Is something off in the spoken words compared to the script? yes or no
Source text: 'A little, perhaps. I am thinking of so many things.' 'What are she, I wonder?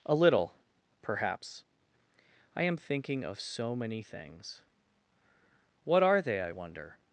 yes